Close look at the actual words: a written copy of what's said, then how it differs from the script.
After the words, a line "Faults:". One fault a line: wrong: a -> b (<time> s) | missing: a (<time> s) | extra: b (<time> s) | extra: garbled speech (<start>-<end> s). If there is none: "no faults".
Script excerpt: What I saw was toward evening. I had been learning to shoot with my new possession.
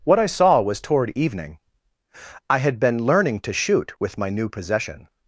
What I saw was toward evening. I had been learning to shoot with my new possession.
Faults:
no faults